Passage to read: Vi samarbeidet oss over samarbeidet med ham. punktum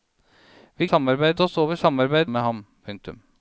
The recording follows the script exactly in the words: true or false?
true